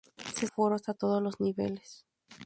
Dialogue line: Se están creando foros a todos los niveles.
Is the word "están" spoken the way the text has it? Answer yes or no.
no